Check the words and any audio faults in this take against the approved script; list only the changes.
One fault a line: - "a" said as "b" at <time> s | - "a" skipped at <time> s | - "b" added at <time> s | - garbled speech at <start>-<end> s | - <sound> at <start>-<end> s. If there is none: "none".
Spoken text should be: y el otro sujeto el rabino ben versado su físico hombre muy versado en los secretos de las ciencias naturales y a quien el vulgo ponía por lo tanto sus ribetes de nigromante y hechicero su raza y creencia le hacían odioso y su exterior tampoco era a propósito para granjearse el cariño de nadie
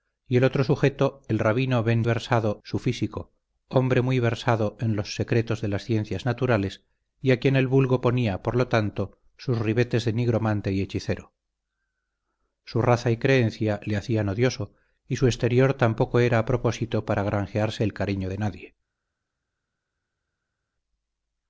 none